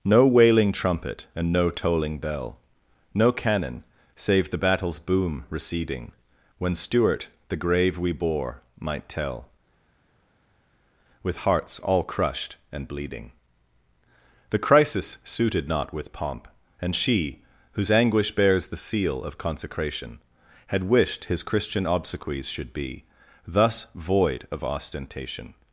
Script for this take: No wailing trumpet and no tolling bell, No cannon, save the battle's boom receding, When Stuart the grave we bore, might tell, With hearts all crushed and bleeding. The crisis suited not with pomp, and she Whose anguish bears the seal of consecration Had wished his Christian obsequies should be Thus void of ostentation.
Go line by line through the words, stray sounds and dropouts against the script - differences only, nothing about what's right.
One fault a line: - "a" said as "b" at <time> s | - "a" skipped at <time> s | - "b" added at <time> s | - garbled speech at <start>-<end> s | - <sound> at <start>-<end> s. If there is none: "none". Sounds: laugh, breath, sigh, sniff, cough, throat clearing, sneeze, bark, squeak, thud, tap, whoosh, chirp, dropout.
none